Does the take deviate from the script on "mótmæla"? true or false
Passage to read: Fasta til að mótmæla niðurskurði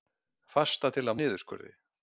true